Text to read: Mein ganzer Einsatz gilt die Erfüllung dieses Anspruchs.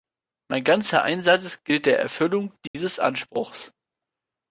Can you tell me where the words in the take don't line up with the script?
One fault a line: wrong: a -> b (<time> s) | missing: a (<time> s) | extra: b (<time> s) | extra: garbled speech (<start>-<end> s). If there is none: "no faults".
wrong: die -> der (1.9 s)